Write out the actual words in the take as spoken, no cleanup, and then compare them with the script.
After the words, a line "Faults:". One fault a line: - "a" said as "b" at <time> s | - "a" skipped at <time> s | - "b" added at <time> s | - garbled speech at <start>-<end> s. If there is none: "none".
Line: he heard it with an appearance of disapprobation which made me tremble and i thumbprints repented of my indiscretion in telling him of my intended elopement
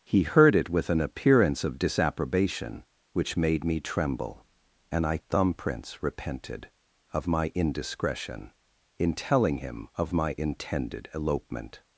he heard it with an appearance of disapprobation which made me tremble and i thumbprints repented of my indiscretion in telling him of my intended elopement
Faults:
none